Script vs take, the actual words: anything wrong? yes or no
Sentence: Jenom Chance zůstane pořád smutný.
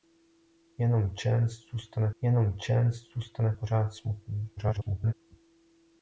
yes